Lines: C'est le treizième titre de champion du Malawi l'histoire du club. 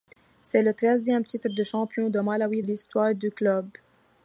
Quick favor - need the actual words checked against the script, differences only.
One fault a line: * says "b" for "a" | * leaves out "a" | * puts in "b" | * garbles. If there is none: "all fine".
all fine